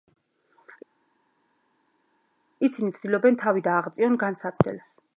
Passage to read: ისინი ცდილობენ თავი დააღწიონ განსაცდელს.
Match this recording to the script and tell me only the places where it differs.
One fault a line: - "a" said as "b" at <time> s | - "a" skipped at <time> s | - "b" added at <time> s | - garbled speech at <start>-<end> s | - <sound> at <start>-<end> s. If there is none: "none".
none